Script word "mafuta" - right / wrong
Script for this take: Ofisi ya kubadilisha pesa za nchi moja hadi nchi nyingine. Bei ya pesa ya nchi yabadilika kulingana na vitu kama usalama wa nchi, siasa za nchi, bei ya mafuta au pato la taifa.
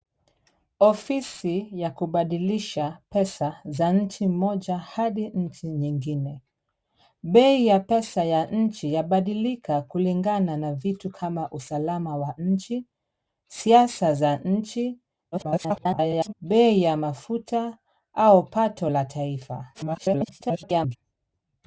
right